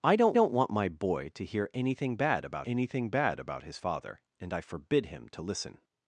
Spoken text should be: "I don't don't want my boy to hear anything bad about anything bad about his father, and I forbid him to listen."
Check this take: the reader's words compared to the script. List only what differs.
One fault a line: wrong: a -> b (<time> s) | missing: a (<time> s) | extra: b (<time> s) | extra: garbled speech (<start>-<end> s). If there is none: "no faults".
no faults